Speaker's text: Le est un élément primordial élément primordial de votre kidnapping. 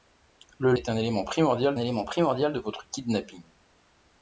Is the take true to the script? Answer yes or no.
yes